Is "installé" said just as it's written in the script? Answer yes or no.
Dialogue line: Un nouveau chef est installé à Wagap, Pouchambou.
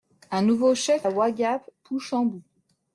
no